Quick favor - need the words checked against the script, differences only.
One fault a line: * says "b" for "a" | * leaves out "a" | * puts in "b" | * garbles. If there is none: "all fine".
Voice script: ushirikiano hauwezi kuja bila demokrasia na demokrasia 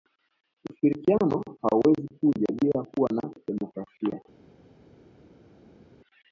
* says "kuwa" for "demokrasia"